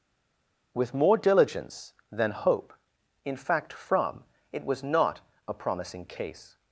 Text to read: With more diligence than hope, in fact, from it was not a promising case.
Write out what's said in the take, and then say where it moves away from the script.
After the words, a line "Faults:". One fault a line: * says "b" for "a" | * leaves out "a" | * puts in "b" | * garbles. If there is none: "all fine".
With more diligence than hope, in fact, from it was not a promising case.
Faults:
all fine